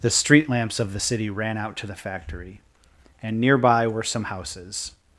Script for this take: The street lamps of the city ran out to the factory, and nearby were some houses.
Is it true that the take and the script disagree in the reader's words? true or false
false